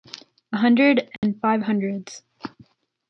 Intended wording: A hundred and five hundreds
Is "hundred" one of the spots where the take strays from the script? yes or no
no